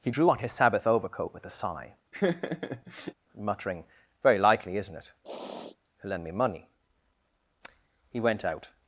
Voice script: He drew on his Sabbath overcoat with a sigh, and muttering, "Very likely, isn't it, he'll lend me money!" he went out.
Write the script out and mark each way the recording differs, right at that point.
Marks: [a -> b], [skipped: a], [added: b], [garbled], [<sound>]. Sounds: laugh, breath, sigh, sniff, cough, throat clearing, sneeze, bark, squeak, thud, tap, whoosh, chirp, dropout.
He drew on his Sabbath overcoat with a sigh, [skipped: and] [laugh] muttering, "Very likely, isn't it, [sniff] he'll lend me money!" he went out.